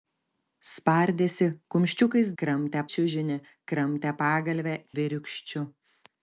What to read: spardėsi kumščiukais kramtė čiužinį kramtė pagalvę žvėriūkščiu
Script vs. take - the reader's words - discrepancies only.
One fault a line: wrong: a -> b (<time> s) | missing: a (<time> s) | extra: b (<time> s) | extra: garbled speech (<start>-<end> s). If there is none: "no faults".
no faults